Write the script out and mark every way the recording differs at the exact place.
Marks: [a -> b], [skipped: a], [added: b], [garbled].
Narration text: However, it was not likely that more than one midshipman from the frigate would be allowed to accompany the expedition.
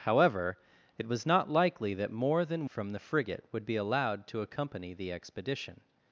However, it was not likely that more than [skipped: one midshipman] from the frigate would be allowed to accompany the expedition.